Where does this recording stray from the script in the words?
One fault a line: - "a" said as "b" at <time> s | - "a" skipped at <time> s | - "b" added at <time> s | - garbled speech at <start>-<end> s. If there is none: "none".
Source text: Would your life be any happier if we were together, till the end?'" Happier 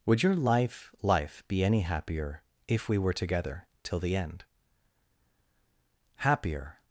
- "life" added at 1.0 s